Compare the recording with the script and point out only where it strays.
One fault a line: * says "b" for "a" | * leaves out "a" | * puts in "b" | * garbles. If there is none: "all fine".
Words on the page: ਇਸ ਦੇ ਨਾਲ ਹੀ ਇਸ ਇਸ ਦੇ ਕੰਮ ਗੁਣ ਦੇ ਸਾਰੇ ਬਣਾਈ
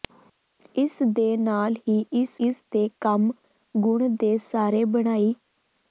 all fine